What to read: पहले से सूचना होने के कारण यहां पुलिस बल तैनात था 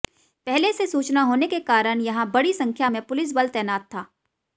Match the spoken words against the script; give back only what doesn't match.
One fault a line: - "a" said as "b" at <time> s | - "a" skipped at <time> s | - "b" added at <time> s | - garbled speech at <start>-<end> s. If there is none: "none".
- "बड़ी संख्या में" added at 2.3 s